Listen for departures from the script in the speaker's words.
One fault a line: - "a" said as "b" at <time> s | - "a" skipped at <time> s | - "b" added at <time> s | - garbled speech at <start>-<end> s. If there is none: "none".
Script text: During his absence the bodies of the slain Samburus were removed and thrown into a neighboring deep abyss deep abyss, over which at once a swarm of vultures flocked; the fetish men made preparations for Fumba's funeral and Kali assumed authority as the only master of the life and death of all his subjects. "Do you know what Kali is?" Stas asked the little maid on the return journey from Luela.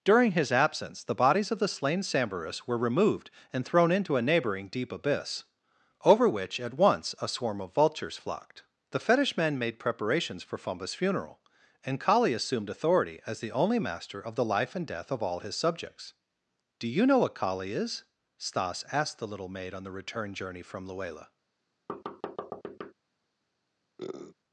- "deep abyss" skipped at 5.4 s